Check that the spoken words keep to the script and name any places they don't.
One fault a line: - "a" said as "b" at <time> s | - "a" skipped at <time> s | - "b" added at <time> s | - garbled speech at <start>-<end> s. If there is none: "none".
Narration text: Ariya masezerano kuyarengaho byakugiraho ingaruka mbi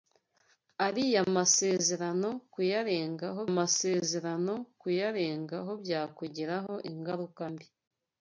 - "masezerano kuyarengaho" added at 3.6 s